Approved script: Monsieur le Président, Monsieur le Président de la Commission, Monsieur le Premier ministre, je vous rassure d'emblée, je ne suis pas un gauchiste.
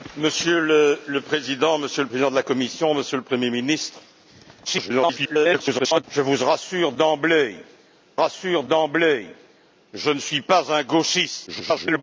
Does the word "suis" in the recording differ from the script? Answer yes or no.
no